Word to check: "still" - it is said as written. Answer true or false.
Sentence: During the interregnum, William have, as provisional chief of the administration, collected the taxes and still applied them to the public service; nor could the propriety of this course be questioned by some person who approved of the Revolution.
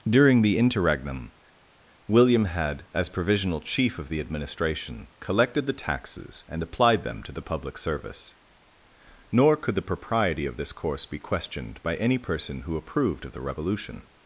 false